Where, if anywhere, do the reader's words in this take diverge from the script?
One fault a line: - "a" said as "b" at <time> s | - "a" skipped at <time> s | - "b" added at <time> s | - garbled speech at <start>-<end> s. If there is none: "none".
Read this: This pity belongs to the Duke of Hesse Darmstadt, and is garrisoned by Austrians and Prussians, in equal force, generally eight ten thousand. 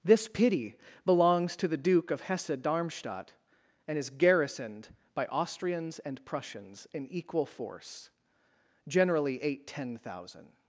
none